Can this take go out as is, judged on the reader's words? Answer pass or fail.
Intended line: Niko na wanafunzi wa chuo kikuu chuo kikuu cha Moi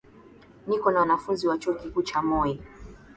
fail